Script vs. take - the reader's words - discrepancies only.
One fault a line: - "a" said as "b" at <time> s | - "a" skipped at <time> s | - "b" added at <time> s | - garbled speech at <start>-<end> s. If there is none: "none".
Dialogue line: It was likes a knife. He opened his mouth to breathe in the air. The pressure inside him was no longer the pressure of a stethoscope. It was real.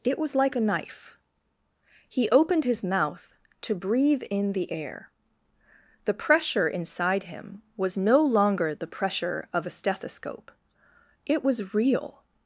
- "likes" said as "like" at 0.3 s